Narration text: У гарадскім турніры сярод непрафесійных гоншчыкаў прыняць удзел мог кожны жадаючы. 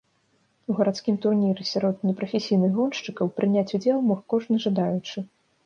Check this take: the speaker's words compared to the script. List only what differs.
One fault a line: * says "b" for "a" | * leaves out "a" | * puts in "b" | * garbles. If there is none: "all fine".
all fine